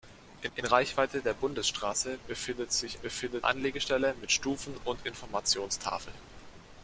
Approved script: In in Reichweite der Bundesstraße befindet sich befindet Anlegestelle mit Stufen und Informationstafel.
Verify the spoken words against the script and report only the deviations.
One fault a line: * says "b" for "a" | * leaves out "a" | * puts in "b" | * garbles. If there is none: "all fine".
all fine